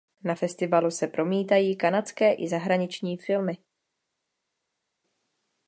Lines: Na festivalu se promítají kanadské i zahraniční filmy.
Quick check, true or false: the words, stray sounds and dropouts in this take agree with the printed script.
true